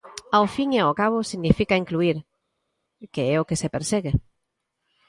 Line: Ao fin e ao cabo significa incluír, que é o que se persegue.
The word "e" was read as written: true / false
true